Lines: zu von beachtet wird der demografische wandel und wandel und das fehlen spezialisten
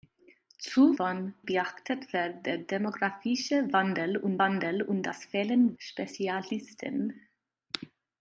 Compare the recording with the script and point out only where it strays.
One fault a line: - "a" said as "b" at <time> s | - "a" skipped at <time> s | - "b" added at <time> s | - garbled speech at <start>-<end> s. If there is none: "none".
none